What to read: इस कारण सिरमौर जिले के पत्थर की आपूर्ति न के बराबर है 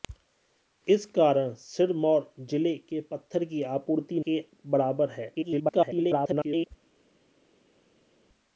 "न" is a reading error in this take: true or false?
true